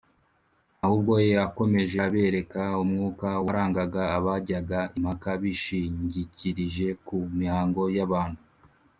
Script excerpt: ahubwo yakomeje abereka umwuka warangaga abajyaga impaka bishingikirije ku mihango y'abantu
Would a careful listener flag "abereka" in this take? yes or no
no